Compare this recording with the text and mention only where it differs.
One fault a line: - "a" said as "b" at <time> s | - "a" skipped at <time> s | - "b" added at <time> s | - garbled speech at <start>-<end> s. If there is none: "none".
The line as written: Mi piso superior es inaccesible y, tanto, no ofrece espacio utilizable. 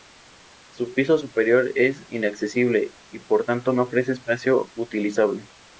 - "Mi" said as "Su" at 0.7 s
- "por" added at 3.2 s